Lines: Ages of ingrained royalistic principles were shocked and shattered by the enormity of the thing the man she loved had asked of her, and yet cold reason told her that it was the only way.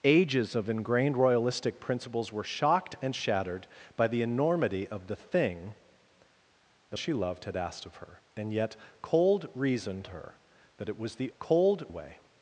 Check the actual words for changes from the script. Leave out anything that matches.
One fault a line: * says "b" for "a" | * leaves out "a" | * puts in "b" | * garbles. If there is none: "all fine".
* leaves out "man"
* leaves out "told"
* says "cold" for "only"